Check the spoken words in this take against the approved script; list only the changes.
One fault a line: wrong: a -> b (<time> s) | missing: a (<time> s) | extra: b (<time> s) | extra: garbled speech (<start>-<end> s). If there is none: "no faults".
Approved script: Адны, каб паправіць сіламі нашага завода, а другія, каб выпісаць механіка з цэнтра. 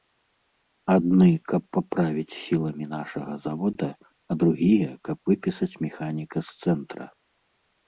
no faults